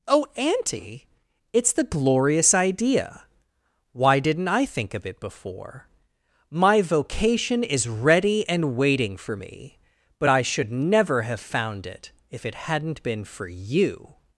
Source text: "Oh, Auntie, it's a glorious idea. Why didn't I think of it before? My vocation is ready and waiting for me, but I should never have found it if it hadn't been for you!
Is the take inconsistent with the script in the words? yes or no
yes